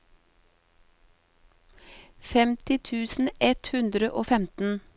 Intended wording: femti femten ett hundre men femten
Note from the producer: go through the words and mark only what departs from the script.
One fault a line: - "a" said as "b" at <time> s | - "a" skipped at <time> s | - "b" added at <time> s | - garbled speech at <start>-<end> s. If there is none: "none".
- "femten" said as "tusen" at 2.8 s
- "men" said as "og" at 4.1 s